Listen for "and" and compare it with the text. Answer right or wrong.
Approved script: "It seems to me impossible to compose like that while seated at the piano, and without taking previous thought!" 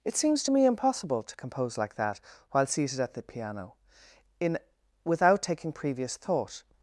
wrong